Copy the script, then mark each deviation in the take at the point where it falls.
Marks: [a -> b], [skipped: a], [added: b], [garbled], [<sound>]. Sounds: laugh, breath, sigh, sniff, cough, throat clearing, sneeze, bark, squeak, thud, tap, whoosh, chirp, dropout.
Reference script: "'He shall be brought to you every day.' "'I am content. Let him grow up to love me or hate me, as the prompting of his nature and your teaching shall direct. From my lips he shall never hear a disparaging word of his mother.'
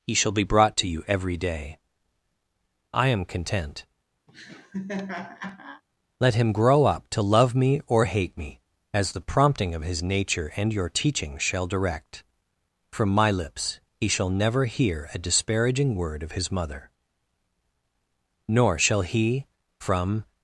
"'He shall be brought to you every day.' "'I am content. [laugh] Let him grow up to love me or hate me, as the prompting of his nature and your teaching shall direct. From my lips he shall never hear a disparaging word of his mother.' [added: Nor shall he from]